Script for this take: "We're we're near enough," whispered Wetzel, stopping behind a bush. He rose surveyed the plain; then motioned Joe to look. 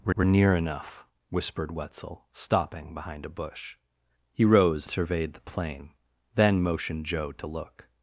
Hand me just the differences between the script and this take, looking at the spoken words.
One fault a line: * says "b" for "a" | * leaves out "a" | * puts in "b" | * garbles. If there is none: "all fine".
all fine